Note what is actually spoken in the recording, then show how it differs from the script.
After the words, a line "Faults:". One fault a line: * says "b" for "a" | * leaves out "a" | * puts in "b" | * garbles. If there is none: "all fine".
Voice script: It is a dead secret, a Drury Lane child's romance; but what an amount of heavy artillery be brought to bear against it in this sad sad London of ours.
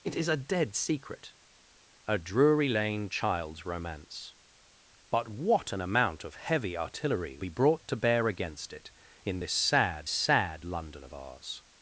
It is a dead secret, a Drury Lane child's romance; but what an amount of heavy artillery be brought to bear against it in this sad sad London of ours.
Faults:
all fine